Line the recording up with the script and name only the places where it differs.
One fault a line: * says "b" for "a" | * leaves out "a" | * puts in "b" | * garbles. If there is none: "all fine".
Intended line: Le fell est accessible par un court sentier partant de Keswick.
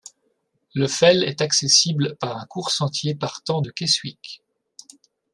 all fine